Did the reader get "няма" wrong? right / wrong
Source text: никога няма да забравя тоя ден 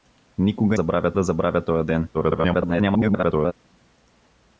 wrong